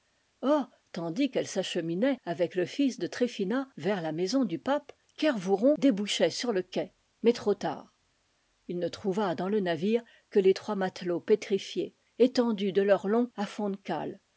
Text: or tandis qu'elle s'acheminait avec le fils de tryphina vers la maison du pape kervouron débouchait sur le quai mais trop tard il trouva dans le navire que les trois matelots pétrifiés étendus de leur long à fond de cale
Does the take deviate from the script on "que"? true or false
false